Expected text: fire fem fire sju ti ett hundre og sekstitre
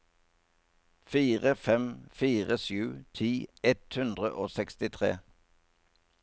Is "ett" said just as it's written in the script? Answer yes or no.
yes